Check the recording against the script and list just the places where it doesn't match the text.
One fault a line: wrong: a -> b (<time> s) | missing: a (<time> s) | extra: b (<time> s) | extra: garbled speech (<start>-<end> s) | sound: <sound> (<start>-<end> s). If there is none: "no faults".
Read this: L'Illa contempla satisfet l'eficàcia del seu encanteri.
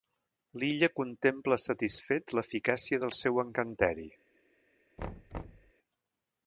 sound: thud (5.0-5.7 s)